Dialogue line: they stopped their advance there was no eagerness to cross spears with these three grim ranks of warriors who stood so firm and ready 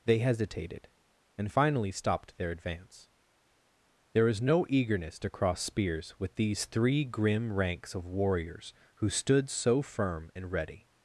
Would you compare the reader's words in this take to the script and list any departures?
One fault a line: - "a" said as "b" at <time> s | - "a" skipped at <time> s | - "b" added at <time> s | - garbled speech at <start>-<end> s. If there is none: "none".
- "hesitated and finally" added at 0.2 s